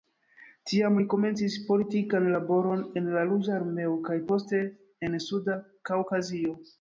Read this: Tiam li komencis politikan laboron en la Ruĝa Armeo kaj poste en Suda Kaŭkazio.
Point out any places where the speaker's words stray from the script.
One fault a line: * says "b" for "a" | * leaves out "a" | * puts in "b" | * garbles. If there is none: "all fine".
all fine